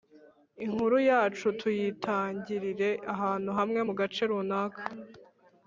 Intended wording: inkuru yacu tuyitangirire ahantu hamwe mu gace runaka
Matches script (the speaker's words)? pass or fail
pass